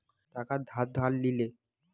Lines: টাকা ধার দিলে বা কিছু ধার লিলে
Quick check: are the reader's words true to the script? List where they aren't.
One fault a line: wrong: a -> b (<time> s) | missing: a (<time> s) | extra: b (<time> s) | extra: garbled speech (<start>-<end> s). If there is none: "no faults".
missing: দিলে বা কিছু (0.9 s)